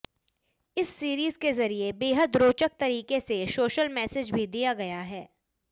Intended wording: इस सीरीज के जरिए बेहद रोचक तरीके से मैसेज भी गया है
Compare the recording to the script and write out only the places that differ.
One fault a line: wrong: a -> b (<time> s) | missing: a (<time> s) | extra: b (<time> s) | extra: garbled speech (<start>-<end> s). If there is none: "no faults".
extra: सोशल (3.5 s)
extra: दिया (4.5 s)